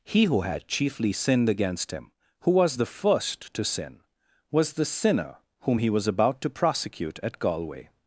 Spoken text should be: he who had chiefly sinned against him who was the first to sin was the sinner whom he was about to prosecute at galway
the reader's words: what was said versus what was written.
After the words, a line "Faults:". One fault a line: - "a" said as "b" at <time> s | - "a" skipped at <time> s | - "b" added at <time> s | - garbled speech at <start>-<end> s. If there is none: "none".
he who had chiefly sinned against him who was the first to sin was the sinner whom he was about to prosecute at galway
Faults:
none